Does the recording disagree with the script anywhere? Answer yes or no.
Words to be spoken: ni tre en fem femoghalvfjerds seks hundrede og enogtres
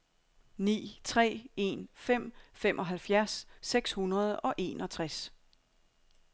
no